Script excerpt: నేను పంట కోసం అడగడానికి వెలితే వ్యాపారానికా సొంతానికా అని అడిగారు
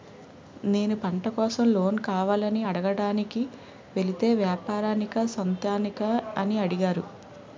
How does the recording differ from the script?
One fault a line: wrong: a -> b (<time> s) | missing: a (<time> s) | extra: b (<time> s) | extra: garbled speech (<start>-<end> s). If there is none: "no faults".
extra: లోన్ కావాలని (1.7 s)